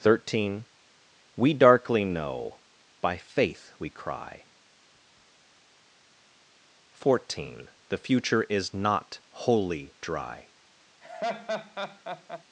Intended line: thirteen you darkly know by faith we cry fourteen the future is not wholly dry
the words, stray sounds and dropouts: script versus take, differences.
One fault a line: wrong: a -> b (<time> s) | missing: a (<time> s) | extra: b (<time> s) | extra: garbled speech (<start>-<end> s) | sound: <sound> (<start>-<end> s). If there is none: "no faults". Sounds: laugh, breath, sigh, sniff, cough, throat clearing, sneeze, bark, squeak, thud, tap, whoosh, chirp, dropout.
wrong: you -> we (1.4 s)
sound: laugh (11.0-12.4 s)